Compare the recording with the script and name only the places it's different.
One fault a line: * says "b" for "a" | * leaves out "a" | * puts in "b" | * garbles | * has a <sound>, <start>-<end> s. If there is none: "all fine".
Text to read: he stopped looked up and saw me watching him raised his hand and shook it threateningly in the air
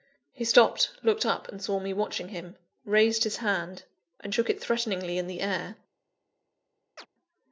* has a chirp, 7.0-7.1 s